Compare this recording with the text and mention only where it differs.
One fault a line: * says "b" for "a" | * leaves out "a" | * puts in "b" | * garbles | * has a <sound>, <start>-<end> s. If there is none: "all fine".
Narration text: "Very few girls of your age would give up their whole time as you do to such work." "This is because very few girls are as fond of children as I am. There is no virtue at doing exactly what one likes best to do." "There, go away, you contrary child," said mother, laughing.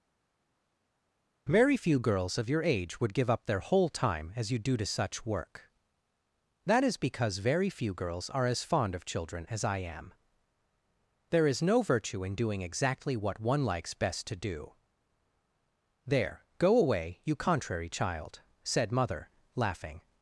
* says "That" for "This"
* says "in" for "at"